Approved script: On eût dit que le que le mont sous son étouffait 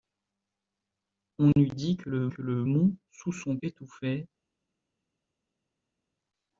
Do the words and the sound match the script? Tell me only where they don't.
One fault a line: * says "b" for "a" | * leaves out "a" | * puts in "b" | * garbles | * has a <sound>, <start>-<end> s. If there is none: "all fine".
all fine